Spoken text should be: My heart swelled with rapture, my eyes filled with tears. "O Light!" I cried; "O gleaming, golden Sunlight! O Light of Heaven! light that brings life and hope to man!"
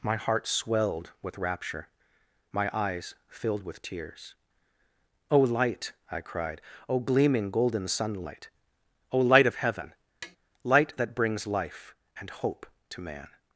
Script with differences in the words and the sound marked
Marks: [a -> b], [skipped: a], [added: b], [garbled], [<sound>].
My heart swelled with rapture, my eyes filled with tears. "O Light!" I cried; "O gleaming, golden Sunlight! O Light of Heaven! [tap] light that brings life and hope to man!"